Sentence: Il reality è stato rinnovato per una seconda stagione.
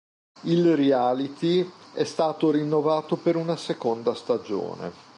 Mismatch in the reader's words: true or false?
false